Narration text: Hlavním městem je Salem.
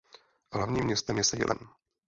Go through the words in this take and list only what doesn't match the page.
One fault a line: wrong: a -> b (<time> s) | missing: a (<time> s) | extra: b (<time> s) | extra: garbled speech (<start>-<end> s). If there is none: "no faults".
no faults